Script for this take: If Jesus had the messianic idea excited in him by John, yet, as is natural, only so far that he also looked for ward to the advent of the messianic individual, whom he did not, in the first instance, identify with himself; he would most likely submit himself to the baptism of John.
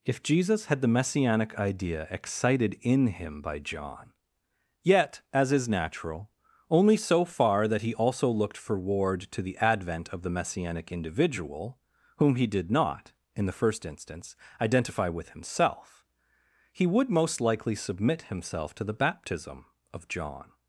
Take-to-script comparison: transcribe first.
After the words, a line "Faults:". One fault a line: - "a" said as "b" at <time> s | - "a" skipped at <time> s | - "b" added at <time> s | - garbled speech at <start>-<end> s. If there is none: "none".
If Jesus had the messianic idea excited in him by John, yet, as is natural, only so far that he also looked for ward to the advent of the messianic individual, whom he did not, in the first instance, identify with himself; he would most likely submit himself to the baptism of John.
Faults:
none